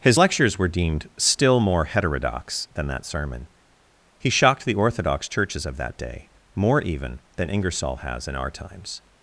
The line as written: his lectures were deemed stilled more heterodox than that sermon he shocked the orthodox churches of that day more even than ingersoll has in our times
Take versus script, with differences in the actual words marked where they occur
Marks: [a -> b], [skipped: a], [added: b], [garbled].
his lectures were deemed [stilled -> still] more heterodox than that sermon he shocked the orthodox churches of that day more even than ingersoll has in our times